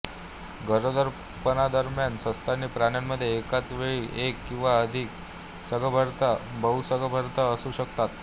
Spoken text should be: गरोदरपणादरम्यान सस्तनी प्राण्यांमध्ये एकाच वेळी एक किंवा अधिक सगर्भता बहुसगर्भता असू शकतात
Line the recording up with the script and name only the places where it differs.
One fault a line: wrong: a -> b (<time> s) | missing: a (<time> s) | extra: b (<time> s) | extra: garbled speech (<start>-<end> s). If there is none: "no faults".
no faults